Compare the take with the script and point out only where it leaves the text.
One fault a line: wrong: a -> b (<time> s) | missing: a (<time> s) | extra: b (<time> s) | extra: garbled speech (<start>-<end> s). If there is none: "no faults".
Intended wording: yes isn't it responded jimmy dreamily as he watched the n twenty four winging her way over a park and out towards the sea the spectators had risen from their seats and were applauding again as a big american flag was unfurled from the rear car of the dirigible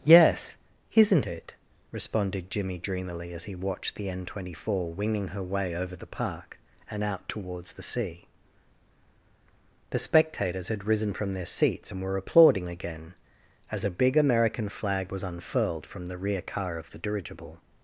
wrong: a -> the (6.0 s)